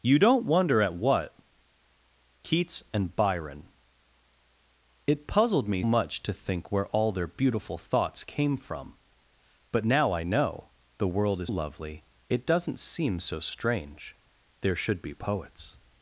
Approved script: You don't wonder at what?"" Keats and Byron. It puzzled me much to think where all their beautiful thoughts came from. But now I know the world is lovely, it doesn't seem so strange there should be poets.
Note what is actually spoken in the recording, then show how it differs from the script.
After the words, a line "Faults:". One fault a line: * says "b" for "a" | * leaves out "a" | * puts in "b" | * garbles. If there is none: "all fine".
You don't wonder at what?"" Keats and Byron. It puzzled me much to think where all their beautiful thoughts came from. But now I know the world is lovely, it doesn't seem so strange there should be poets.
Faults:
all fine